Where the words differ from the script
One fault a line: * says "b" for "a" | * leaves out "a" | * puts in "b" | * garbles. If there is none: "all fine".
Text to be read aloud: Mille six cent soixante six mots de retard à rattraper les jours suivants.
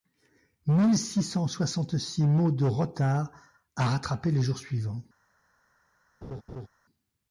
all fine